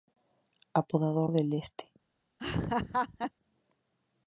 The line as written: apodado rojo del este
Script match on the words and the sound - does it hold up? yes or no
no